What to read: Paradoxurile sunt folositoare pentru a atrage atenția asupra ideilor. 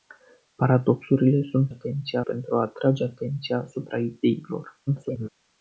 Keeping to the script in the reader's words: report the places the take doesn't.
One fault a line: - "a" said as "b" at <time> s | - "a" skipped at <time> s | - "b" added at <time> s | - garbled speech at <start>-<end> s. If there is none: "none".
- "folositoare" said as "atenția" at 1.7 s
- garbled speech at 4.9-5.3 s